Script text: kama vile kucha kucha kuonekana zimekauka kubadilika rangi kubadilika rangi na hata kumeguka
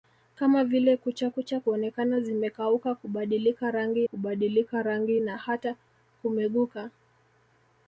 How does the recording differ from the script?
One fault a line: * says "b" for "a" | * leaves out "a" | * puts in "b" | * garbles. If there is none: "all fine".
all fine